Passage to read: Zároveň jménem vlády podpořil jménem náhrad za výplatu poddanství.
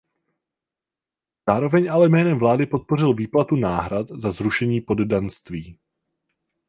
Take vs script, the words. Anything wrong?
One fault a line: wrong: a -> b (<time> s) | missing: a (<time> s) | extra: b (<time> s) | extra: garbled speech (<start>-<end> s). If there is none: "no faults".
extra: ale (1.9 s)
wrong: jménem -> výplatu (3.1 s)
wrong: výplatu -> zrušení (4.3 s)